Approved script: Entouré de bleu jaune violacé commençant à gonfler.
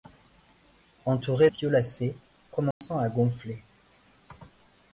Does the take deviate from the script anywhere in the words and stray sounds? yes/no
yes